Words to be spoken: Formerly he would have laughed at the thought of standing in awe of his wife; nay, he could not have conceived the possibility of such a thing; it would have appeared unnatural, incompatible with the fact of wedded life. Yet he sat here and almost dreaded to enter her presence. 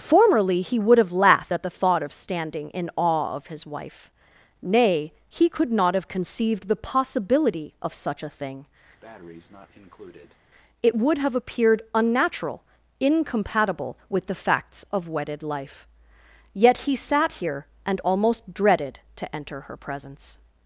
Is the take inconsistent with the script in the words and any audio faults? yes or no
yes